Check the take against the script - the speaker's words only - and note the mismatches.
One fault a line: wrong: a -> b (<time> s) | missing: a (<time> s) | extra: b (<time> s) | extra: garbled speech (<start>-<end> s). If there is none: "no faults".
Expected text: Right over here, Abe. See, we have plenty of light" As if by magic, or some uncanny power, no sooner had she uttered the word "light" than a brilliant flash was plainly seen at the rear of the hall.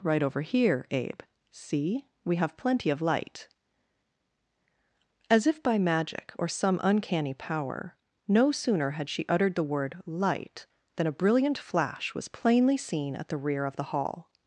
no faults